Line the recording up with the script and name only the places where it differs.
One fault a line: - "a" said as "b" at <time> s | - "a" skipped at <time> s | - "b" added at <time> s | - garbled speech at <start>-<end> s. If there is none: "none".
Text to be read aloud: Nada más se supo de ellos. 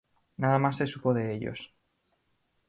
none